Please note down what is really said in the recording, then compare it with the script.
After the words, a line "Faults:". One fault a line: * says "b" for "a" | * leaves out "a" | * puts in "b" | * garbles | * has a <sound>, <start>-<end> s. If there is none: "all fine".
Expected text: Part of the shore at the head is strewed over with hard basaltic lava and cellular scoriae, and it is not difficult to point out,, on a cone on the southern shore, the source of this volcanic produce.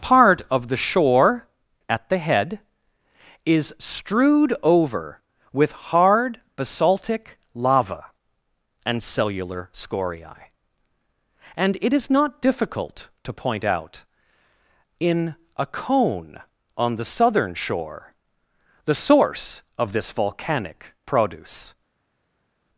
Part of the shore at the head is strewed over with hard basaltic lava and cellular scoriae, and it is not difficult to point out,, in a cone on the southern shore, the source of this volcanic produce.
Faults:
* says "in" for "on"